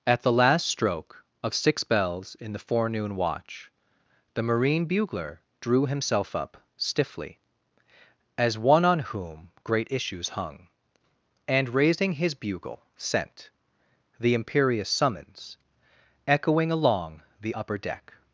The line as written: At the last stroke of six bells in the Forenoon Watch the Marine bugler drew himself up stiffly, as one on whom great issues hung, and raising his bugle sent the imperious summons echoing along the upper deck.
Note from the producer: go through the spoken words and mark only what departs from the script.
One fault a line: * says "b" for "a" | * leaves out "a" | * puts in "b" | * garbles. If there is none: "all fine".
all fine